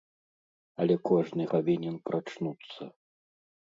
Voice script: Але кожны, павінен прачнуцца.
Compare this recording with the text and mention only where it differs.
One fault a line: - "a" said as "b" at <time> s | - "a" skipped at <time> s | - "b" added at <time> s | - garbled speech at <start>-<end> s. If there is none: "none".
none